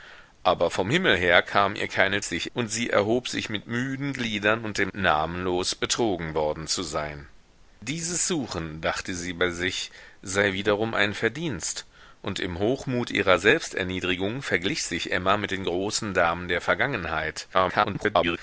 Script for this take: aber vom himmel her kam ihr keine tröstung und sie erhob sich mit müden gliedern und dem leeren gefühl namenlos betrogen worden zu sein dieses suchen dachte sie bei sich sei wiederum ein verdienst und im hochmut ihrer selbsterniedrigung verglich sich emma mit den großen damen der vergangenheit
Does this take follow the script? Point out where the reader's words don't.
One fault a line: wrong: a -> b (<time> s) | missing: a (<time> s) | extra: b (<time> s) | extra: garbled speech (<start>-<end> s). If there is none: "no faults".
wrong: tröstung -> sich (2.2 s)
missing: leeren gefühl (4.9 s)
extra: garbled speech (17.5-18.4 s)